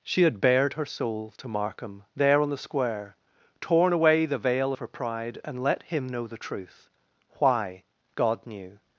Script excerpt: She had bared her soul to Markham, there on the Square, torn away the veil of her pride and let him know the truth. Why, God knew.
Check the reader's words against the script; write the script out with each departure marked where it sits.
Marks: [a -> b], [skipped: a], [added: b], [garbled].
She had bared her soul to Markham, there on the Square, torn away the veil of her pride and let him know the truth. Why, God knew.